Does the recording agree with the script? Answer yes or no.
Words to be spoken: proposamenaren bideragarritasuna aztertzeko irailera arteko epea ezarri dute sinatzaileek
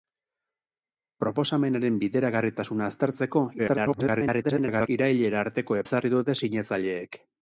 no